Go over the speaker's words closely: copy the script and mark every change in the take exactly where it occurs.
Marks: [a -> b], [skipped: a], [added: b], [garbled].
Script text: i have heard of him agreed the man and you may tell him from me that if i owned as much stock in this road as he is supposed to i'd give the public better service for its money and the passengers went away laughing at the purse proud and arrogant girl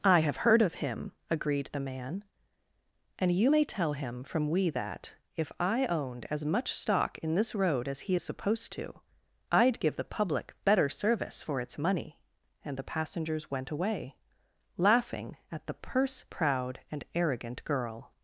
i have heard of him agreed the man and you may tell him from [me -> we] that if i owned as much stock in this road as he is supposed to i'd give the public better service for its money and the passengers went away laughing at the purse proud and arrogant girl